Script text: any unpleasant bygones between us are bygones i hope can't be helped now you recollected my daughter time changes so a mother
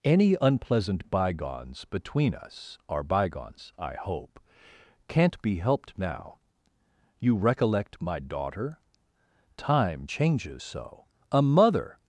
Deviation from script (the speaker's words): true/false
true